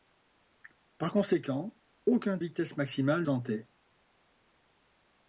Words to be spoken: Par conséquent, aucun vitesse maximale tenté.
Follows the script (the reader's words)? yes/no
yes